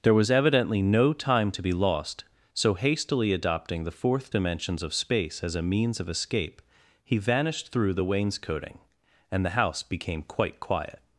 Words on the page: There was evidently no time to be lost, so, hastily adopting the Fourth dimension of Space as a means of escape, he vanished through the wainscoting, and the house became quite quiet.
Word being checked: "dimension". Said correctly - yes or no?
no